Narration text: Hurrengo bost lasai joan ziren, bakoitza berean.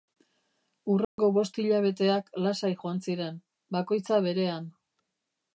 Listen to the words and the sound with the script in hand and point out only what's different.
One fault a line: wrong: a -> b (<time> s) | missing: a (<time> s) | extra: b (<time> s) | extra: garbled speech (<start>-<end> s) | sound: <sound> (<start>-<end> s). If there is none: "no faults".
sound: dropout (1.0-1.2 s)
extra: hilabeteak (1.6 s)